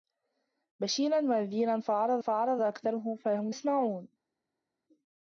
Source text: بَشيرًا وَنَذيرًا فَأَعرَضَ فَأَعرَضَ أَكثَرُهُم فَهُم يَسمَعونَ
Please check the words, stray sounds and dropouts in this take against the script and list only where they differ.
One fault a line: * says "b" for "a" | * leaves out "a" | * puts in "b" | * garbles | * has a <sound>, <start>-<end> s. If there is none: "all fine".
all fine